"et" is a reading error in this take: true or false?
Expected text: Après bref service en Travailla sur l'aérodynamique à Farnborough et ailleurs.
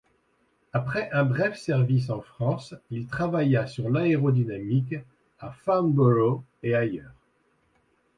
false